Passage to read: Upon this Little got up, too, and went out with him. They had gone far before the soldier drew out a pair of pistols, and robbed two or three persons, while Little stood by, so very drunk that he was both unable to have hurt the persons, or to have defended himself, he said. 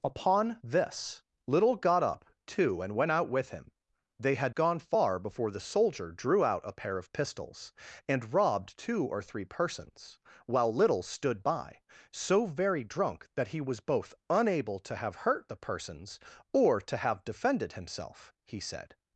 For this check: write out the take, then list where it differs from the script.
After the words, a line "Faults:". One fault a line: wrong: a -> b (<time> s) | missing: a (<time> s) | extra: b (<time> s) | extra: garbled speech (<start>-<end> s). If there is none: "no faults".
Upon this Little got up, too, and went out with him. They had gone far before the soldier drew out a pair of pistols, and robbed two or three persons, while Little stood by, so very drunk that he was both unable to have hurt the persons, or to have defended himself, he said.
Faults:
no faults